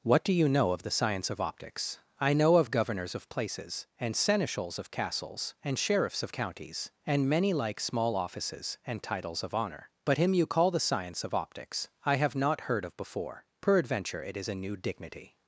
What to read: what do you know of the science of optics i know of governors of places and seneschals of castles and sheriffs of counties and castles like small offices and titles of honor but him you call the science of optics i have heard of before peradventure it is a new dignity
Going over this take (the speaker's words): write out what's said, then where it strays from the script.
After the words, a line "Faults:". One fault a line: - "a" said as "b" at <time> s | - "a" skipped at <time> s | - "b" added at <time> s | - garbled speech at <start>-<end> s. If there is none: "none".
what do you know of the science of optics i know of governors of places and seneschals of castles and sheriffs of counties and many like small offices and titles of honor but him you call the science of optics i have not heard of before peradventure it is a new dignity
Faults:
- "castles" said as "many" at 7.3 s
- "not" added at 12.4 s